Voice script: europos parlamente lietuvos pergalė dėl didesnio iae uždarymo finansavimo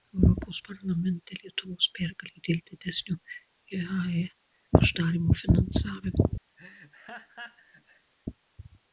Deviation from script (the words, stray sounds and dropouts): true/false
true